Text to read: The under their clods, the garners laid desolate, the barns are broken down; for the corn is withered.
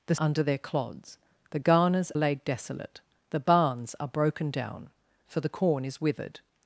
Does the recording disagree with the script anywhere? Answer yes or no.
no